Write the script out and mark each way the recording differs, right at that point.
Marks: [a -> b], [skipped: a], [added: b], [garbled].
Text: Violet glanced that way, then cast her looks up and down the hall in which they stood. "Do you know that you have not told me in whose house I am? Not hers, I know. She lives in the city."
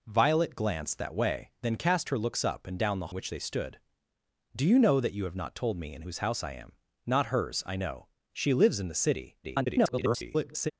Violet glanced that way, then cast her looks up and down the [skipped: hall in] which they stood. "Do you know that you have not told me in whose house I am? Not hers, I know. She lives in the city." [garbled]